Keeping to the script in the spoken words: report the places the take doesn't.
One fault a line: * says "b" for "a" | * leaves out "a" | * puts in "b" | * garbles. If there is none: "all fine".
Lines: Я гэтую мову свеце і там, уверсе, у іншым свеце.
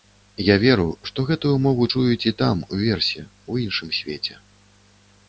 * puts in "веру што"
* says "чуюць" for "свеце"